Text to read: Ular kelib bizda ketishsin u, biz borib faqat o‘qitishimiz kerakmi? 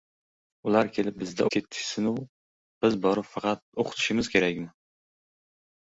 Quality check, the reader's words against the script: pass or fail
pass